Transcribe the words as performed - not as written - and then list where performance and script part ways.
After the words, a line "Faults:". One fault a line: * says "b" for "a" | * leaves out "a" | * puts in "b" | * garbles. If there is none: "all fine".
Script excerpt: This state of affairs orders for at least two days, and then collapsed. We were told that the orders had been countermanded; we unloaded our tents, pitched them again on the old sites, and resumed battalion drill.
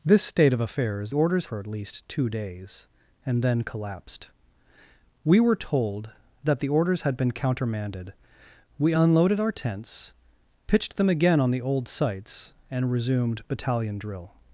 This state of affairs orders for at least two days, and then collapsed. We were told that the orders had been countermanded; we unloaded our tents, pitched them again on the old sites, and resumed battalion drill.
Faults:
all fine